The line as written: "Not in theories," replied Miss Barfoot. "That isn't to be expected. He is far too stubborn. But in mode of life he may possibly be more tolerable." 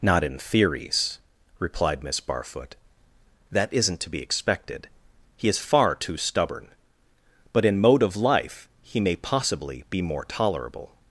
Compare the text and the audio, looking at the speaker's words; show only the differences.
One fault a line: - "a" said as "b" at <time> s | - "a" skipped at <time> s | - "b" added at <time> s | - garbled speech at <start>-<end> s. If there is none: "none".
none